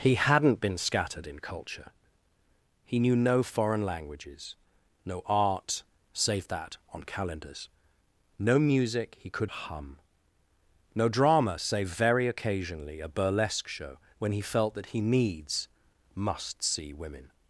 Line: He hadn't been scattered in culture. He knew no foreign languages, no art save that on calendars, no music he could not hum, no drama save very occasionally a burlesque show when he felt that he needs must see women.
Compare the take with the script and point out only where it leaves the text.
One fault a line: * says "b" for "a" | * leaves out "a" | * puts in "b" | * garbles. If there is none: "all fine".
* leaves out "not"